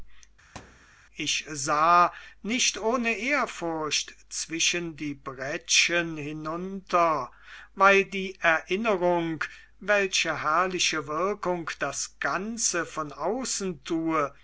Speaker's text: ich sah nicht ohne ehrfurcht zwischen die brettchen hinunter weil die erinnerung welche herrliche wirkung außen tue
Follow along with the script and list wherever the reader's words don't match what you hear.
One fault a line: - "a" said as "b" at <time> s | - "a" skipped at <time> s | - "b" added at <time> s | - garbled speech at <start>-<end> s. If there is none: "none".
- "das ganze von" added at 11.8 s